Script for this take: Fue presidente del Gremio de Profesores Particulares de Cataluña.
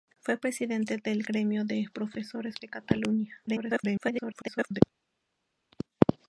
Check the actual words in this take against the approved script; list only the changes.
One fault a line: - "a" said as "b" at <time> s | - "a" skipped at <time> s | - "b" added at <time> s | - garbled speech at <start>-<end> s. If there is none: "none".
- "Particulares" skipped at 2.5 s
- garbled speech at 3.5-4.8 s